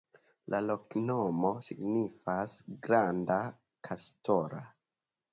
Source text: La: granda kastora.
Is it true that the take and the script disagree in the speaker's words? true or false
true